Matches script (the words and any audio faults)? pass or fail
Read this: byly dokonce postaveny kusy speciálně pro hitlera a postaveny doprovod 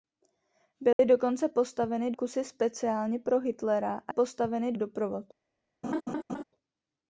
fail